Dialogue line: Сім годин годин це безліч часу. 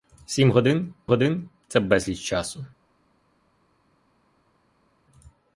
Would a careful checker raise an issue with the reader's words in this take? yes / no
no